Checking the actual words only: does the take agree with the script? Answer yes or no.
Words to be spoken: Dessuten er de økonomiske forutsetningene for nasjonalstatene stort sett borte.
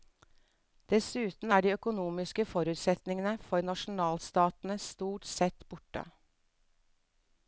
yes